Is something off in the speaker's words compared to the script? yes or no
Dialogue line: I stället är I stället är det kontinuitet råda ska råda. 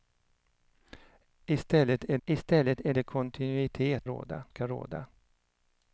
no